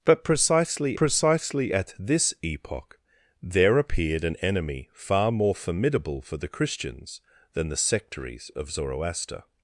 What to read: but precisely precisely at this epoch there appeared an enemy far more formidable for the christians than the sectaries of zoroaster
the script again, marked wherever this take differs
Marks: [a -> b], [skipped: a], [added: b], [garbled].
but precisely precisely at this epoch there appeared an enemy far more formidable for the christians than the sectaries of zoroaster